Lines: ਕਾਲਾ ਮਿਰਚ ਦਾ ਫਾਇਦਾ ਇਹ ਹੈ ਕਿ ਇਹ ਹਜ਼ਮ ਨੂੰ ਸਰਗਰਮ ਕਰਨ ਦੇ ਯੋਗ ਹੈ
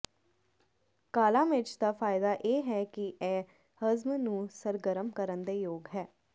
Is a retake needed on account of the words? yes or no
no